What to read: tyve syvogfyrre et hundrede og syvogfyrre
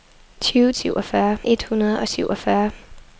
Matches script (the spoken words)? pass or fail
pass